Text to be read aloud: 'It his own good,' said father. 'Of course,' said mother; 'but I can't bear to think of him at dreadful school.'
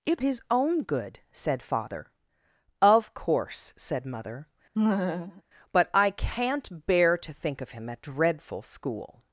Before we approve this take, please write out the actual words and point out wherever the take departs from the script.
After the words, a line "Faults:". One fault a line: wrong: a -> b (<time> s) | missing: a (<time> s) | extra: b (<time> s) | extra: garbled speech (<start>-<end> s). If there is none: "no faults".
'It his own good,' said father. 'Of course,' said mother; 'but I can't bear to think of him at dreadful school.'
Faults:
no faults